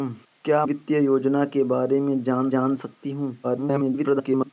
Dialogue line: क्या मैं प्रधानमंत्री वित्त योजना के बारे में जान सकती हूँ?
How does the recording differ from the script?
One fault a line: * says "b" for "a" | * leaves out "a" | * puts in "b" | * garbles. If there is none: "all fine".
* leaves out "मैं प्रधानमंत्री"
* puts in "जान"
* garbles